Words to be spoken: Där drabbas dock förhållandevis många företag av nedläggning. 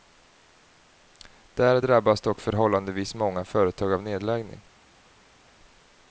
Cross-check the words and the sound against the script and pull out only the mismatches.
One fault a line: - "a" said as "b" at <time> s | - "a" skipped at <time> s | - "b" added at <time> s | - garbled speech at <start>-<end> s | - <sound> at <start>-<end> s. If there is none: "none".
none